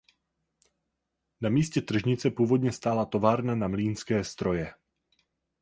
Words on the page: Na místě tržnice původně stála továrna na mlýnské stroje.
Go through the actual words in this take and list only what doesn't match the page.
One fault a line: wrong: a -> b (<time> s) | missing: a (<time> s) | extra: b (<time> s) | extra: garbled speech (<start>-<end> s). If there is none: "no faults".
no faults